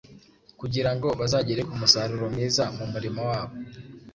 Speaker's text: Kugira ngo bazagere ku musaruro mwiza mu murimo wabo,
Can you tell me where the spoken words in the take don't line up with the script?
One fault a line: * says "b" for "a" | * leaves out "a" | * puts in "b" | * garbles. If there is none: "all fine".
all fine